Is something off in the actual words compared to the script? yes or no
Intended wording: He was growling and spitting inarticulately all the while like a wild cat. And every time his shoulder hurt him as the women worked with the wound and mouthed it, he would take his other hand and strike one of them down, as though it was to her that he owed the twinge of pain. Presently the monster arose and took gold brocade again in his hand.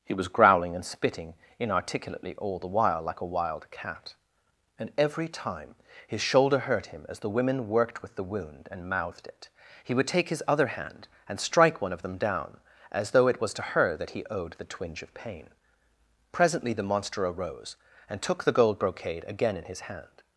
yes